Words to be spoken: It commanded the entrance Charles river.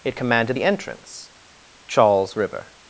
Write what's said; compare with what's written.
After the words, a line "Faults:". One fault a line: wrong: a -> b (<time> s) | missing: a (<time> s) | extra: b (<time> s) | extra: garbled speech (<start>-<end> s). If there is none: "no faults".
It commanded the entrance Charles river.
Faults:
no faults